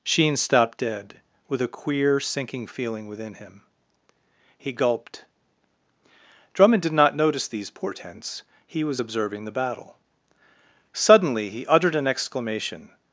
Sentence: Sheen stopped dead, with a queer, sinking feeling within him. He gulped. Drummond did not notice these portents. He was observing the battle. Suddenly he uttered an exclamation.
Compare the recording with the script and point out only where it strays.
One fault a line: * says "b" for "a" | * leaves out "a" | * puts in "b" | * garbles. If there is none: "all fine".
all fine